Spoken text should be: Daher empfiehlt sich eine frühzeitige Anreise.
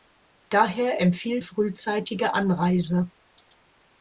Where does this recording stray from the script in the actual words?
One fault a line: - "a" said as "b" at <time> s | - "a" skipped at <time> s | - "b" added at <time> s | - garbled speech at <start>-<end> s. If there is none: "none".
- "sich eine" skipped at 1.4 s